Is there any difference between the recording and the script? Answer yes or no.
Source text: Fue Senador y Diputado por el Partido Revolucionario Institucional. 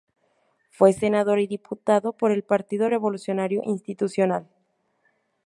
no